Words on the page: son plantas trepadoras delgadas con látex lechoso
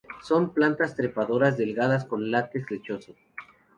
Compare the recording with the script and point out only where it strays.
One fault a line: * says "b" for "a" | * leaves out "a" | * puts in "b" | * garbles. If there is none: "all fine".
all fine